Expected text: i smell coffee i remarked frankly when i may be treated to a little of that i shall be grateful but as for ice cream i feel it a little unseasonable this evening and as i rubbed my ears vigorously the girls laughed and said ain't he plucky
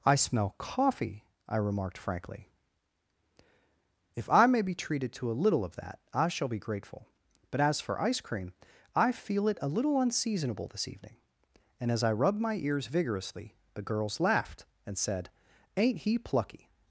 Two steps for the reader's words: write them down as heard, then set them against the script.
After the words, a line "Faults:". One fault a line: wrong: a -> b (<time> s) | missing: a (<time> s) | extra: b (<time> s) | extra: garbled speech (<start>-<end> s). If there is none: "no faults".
i smell coffee i remarked frankly if i may be treated to a little of that i shall be grateful but as for ice cream i feel it a little unseasonable this evening and as i rubbed my ears vigorously the girls laughed and said ain't he plucky
Faults:
wrong: when -> if (4.2 s)